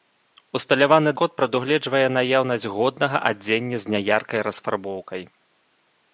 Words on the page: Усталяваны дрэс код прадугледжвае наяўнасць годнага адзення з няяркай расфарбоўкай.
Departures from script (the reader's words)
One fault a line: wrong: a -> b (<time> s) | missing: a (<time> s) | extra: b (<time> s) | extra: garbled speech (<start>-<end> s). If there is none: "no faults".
missing: дрэс (1.1 s)